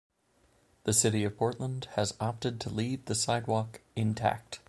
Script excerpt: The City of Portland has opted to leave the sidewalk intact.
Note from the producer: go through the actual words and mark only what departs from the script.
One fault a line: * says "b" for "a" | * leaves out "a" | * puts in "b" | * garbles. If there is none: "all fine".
all fine